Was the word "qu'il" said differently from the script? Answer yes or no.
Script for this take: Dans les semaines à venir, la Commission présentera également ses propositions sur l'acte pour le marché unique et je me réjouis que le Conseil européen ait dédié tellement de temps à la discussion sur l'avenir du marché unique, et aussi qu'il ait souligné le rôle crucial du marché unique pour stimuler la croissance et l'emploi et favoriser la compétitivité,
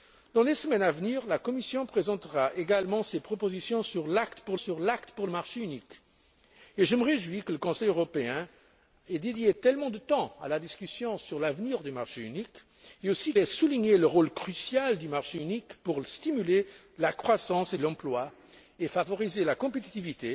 yes